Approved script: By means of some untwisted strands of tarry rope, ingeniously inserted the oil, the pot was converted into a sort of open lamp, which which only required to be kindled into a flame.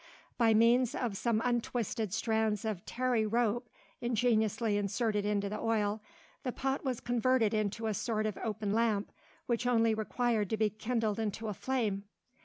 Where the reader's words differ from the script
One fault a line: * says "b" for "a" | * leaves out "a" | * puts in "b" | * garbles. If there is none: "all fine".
* puts in "into"
* leaves out "which"